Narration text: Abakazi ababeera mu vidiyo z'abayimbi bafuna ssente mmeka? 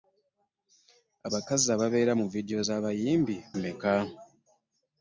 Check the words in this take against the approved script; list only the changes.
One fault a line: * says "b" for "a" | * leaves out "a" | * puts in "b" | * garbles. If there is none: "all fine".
* leaves out "bafuna ssente"